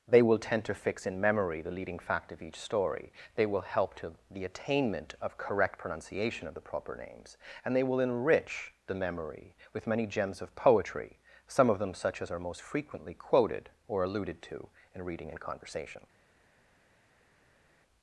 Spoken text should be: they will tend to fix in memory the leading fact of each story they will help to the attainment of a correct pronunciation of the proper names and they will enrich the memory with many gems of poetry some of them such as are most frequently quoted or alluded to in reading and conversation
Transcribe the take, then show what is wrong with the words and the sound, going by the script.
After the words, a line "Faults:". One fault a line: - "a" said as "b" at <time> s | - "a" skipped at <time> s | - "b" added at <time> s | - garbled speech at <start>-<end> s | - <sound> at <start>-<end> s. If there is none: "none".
they will tend to fix in memory the leading fact of each story they will help to the attainment of correct pronunciation of the proper names and they will enrich the memory with many gems of poetry some of them such as are most frequently quoted or alluded to in reading and conversation
Faults:
- "a" skipped at 5.4 s